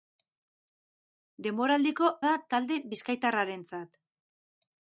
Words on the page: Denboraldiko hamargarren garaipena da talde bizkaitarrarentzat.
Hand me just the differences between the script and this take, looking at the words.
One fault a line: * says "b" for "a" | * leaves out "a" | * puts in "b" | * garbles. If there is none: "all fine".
* leaves out "hamargarren garaipena"